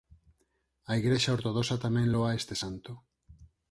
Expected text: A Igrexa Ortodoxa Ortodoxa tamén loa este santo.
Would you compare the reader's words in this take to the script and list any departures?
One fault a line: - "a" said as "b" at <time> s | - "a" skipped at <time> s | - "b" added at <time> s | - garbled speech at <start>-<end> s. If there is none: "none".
- "Ortodoxa" skipped at 1.8 s